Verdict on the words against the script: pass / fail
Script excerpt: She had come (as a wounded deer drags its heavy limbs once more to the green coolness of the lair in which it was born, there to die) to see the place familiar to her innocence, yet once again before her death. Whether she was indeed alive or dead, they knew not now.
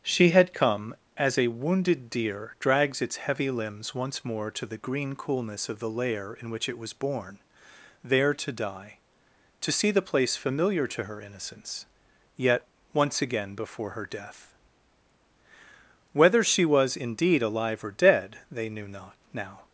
pass